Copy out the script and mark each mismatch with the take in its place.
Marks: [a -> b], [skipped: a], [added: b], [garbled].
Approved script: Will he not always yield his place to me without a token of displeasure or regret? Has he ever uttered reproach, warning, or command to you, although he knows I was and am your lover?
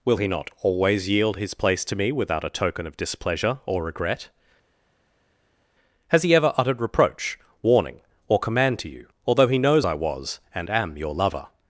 Will he not always yield his place to me without a token of displeasure or regret? Has he ever uttered reproach, warning, or command to you, although he knows I was and am your lover?